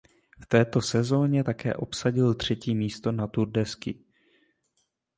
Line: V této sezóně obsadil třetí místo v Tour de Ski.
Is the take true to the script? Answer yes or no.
no